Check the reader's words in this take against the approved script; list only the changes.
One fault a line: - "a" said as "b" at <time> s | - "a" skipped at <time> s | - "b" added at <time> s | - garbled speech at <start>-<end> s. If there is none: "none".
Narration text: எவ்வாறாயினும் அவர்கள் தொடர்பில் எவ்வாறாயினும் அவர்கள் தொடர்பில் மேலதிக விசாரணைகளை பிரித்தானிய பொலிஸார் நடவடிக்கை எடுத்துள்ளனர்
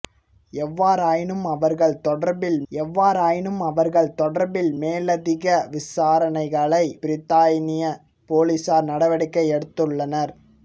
none